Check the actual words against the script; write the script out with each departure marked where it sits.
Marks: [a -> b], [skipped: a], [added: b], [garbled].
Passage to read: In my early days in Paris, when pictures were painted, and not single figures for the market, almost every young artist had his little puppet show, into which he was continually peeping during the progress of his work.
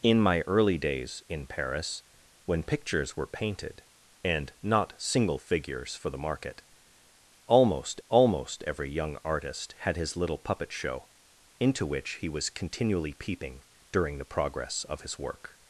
In my early days in Paris, when pictures were painted, and not single figures for the market, almost [added: almost] every young artist had his little puppet show, into which he was continually peeping during the progress of his work.